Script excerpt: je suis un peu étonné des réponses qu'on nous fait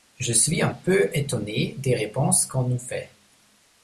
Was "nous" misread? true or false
false